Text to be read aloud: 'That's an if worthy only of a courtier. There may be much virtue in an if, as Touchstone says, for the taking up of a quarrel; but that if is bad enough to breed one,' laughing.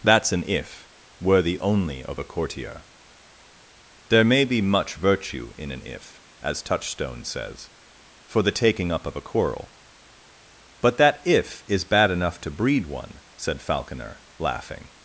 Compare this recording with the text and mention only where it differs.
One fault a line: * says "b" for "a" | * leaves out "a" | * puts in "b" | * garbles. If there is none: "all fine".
* puts in "said Falconer"